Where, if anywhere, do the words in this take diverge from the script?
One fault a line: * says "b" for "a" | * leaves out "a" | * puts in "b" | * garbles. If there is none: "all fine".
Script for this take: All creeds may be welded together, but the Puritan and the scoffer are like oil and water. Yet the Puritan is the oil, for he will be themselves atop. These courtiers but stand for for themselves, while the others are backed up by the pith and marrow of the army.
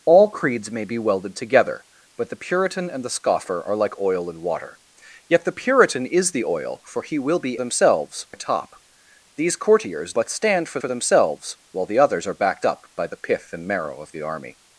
all fine